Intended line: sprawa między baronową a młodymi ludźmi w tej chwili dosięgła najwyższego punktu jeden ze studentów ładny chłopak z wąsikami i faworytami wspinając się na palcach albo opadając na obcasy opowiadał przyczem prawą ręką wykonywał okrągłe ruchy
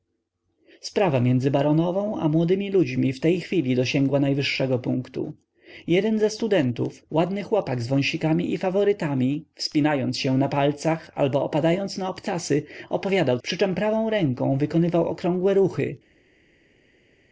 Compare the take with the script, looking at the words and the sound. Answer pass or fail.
pass